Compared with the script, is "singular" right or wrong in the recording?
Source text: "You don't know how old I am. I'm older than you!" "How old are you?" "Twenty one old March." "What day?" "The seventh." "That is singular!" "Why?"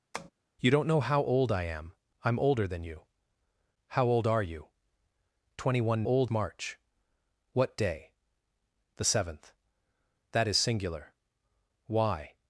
right